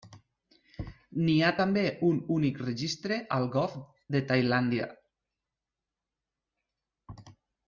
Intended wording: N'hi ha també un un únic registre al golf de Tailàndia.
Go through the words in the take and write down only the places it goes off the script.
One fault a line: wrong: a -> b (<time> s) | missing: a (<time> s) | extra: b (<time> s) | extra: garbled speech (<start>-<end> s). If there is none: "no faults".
missing: un (2.2 s)